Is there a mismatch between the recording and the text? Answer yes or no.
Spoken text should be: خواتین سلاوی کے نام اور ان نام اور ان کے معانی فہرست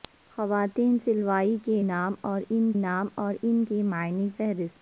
no